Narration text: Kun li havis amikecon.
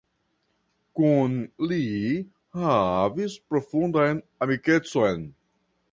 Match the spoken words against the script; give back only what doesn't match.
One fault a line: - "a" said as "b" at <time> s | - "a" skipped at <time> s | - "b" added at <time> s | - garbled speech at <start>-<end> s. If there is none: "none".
- "profundan" added at 3.5 s